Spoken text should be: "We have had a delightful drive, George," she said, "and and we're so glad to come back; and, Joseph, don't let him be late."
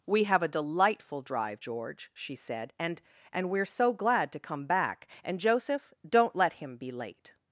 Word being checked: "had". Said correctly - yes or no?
no